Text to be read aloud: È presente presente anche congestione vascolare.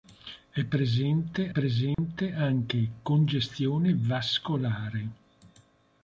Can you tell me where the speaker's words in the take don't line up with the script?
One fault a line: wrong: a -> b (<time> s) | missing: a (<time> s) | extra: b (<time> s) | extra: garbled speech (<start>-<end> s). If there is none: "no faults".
no faults